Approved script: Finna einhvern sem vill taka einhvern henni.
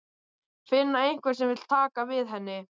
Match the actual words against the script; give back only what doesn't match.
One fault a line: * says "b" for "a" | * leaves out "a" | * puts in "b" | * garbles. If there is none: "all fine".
* says "við" for "einhvern"